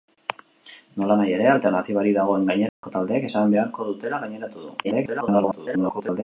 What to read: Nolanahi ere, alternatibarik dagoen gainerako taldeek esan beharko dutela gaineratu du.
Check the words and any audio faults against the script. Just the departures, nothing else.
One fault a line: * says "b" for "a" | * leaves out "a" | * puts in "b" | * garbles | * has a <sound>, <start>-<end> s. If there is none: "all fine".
* has a dropout, 2.7-2.8 s
* garbles